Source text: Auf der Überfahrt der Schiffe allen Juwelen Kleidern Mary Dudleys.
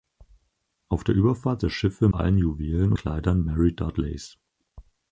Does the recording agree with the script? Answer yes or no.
yes